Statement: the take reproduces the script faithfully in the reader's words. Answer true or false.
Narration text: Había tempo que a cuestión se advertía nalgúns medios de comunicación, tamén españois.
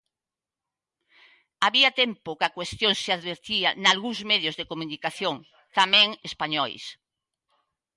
true